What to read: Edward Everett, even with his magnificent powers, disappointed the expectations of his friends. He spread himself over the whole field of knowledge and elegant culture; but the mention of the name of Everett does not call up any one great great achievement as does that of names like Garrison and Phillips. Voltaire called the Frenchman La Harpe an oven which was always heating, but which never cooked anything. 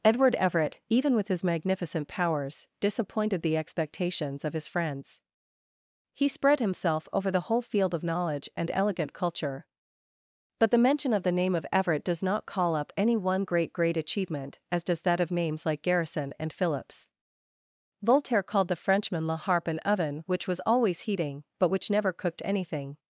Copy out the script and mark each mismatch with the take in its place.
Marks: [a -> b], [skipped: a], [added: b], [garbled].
Edward Everett, even with his magnificent powers, disappointed the expectations of his friends. He spread himself over the whole field of knowledge and elegant culture; but the mention of the name of Everett does not call up any one great great achievement as does that of names like Garrison and Phillips. Voltaire called the Frenchman La Harpe an oven which was always heating, but which never cooked anything.